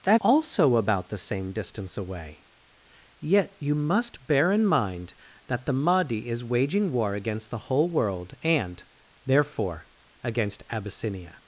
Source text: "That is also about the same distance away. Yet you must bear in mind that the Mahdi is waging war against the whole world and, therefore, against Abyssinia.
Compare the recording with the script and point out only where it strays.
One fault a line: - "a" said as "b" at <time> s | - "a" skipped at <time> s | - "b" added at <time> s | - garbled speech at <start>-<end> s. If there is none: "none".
- "is" skipped at 0.2 s